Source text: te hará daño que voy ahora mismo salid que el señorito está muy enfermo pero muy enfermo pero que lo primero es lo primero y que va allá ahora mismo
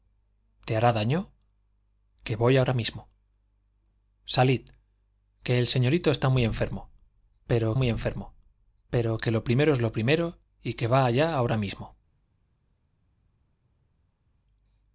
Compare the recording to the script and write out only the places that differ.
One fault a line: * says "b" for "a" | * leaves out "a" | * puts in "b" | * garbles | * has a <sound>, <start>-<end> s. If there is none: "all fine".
all fine